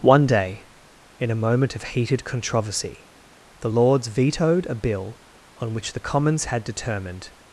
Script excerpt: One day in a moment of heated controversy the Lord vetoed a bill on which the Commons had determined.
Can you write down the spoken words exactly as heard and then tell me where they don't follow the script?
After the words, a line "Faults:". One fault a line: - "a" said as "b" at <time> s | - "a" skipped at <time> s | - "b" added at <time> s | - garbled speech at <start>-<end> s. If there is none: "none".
One day in a moment of heated controversy the Lords vetoed a bill on which the Commons had determined.
Faults:
- "Lord" said as "Lords" at 3.7 s